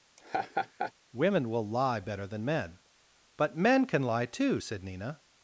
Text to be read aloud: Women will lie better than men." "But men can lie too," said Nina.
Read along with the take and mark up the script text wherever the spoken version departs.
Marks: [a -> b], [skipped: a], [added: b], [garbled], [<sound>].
[laugh] Women will lie better than men." "But men can lie too," said Nina.